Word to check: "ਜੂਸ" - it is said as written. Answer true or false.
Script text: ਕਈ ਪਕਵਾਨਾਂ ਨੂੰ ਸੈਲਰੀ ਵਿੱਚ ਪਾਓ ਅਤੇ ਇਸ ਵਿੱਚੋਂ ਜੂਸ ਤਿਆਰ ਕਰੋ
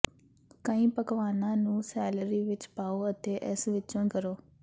false